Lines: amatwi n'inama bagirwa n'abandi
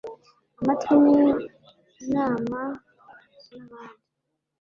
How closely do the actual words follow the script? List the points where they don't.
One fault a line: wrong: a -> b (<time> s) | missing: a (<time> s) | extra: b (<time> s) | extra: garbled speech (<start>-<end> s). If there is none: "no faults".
missing: bagirwa (2.6 s)